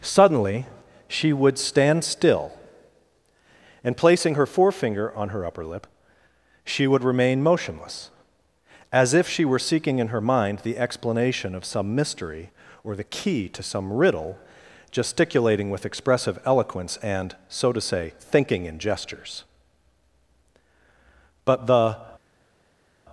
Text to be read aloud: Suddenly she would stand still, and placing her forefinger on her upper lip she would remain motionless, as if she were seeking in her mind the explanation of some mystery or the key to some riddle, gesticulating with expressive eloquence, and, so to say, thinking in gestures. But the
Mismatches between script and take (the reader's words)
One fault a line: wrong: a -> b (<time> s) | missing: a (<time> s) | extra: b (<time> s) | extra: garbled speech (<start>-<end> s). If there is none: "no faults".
no faults